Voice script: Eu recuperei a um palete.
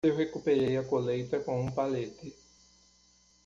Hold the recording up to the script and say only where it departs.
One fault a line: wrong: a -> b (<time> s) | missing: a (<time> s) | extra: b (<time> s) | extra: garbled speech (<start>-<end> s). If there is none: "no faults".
extra: colheita com (0.8 s)